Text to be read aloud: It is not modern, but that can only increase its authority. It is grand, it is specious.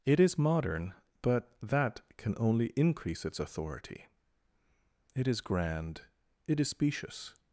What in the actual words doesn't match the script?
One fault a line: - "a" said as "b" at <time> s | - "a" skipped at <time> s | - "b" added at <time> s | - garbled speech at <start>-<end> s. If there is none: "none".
- "not" skipped at 0.4 s